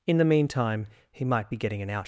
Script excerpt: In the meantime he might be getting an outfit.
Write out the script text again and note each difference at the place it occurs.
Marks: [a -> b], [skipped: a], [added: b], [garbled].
In the meantime he might be getting an [outfit. -> out]